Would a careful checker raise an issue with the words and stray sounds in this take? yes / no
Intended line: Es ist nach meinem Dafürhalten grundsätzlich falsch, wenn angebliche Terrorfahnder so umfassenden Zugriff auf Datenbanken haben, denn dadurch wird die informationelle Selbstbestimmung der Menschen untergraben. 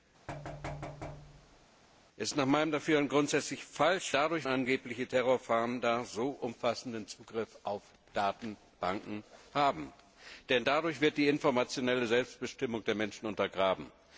yes